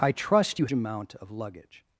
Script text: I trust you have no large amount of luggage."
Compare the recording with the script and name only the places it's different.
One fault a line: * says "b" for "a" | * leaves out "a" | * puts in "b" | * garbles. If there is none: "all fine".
* leaves out "have no large"